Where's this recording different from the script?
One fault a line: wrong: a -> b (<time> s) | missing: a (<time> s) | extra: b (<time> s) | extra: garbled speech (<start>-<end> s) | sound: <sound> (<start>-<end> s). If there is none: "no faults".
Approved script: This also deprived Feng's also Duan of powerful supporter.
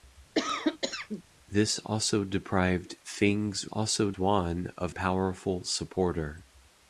sound: cough (0.3-1.2 s)